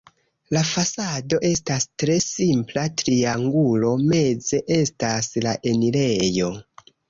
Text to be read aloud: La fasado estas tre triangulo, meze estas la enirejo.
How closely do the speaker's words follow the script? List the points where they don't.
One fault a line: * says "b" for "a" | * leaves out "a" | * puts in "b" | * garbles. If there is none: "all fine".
* puts in "simpla"